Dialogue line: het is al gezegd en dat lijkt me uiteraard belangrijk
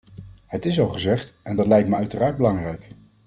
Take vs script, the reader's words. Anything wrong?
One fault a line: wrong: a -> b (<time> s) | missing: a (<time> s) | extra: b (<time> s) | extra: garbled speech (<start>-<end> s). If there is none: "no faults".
no faults